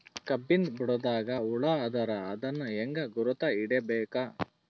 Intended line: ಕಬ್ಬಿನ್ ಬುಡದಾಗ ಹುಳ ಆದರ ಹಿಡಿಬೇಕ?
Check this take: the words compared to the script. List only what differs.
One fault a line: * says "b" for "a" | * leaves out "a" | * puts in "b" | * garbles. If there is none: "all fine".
* puts in "ಅದನ್ ಹೆಂಗ್ ಗುರುತ"